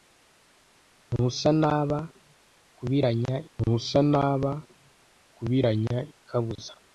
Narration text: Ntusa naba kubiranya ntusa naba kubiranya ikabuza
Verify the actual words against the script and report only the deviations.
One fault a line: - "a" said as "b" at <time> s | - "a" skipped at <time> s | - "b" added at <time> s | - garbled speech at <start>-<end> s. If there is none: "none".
none